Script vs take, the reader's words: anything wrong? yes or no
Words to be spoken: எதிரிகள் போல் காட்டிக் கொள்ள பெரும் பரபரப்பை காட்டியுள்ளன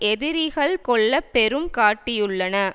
yes